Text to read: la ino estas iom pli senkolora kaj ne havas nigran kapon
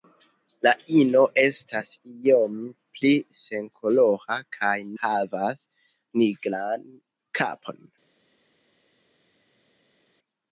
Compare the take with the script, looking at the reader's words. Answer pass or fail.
fail